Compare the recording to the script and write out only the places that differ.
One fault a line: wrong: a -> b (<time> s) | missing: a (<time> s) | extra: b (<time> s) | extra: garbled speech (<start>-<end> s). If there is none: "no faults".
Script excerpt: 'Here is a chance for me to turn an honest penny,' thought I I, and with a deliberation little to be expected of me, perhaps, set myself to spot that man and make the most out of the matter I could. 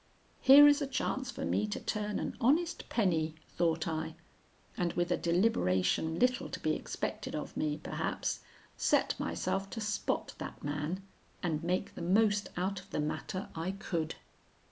missing: I (4.2 s)